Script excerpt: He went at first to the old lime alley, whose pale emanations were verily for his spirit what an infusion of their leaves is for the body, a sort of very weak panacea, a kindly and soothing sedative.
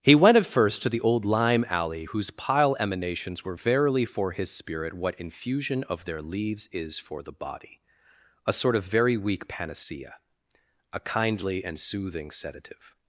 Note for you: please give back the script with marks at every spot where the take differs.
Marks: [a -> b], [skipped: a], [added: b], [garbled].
He went at first to the old lime alley, whose [pale -> pile] emanations were verily for his spirit what [skipped: an] infusion of their leaves is for the body, a sort of very weak panacea, a kindly and soothing sedative.